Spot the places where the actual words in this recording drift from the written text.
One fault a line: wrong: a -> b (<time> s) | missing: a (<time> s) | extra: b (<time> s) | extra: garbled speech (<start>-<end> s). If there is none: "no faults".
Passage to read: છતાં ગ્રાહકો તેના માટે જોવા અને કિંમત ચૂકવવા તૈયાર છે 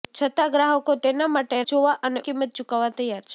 no faults